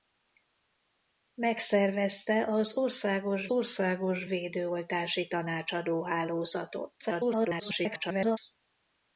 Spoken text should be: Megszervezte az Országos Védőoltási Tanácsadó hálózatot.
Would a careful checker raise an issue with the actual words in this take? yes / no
yes